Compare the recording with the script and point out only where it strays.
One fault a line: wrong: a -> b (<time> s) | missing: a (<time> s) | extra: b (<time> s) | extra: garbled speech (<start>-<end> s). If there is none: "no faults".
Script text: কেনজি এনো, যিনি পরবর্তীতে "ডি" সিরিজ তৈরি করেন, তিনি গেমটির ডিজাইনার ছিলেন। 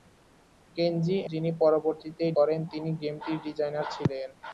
missing: এনো (1.2 s)
missing: ডি সিরিজ তৈরি (2.2 s)